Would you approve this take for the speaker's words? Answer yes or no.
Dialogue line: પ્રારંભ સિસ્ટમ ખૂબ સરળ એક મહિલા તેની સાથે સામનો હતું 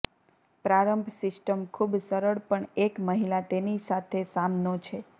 no